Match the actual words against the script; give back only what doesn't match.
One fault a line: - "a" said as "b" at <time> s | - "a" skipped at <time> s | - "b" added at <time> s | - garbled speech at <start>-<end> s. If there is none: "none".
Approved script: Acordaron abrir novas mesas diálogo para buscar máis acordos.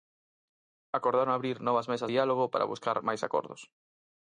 none